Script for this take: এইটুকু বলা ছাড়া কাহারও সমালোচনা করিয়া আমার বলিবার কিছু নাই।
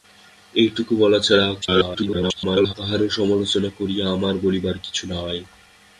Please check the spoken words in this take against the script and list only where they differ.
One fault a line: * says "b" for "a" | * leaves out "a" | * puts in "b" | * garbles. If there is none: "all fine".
* garbles